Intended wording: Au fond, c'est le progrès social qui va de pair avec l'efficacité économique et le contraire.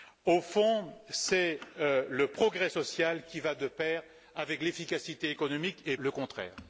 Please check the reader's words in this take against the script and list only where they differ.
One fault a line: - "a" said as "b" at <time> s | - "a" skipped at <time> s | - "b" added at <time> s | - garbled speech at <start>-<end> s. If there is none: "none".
none